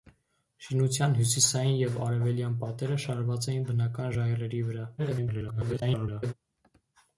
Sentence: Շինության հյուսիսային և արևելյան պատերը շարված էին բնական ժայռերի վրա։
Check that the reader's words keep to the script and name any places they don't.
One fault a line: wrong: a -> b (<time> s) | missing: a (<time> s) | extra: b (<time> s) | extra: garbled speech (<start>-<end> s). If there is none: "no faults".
extra: garbled speech (5.0-6.3 s)